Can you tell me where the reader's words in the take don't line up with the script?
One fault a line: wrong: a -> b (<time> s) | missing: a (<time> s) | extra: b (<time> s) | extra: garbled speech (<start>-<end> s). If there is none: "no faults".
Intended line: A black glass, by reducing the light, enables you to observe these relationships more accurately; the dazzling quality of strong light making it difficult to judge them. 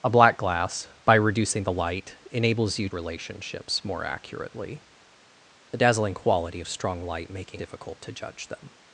missing: to observe these (2.9 s)
missing: it (7.6 s)